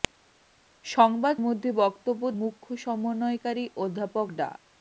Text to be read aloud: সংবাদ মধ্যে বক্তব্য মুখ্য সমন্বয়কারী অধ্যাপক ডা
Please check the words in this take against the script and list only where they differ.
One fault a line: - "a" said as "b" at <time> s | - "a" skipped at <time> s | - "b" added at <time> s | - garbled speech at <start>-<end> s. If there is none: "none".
none